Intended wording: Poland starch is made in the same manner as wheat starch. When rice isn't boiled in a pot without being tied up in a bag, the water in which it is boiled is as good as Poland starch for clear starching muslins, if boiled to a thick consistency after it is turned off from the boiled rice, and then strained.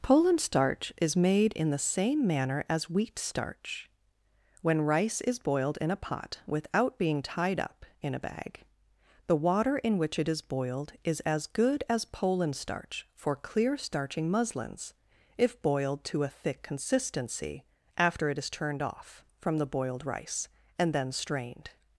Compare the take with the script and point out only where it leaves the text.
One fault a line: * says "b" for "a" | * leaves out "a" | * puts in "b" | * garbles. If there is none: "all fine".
* says "is" for "isn't"